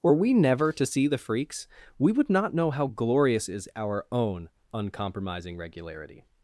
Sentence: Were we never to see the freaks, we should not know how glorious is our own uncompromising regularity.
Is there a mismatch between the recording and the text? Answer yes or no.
yes